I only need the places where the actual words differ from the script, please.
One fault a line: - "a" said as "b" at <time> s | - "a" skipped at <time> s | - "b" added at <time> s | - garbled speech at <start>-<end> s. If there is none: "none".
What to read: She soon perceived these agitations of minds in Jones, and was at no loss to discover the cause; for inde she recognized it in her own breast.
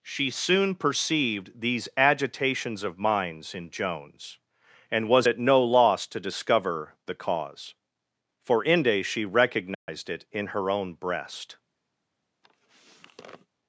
none